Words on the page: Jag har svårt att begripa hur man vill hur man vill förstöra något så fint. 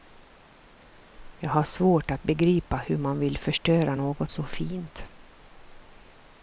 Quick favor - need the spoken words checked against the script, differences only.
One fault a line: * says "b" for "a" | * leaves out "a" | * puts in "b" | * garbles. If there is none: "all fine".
* leaves out "hur man vill"